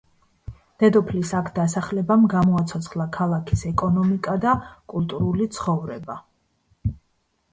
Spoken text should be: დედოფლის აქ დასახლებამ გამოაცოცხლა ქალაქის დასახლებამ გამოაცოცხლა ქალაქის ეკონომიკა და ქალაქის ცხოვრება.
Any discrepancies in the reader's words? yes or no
yes